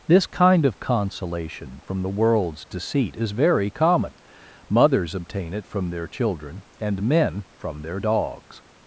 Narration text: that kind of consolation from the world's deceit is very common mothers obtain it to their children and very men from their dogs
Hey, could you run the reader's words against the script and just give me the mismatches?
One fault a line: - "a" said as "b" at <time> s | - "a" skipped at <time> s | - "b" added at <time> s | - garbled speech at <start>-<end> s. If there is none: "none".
- "that" said as "this" at 0.1 s
- "to" said as "from" at 5.7 s
- "very" skipped at 7.0 s